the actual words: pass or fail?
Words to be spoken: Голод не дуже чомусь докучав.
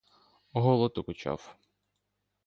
fail